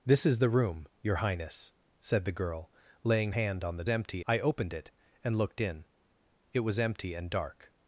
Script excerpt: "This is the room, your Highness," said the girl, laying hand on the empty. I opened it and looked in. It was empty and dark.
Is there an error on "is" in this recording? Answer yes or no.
no